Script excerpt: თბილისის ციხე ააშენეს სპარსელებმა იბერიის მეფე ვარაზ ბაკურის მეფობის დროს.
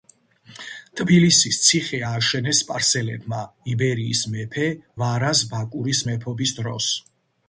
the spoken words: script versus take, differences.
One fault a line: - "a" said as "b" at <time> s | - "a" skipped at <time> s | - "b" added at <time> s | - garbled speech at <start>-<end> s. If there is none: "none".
none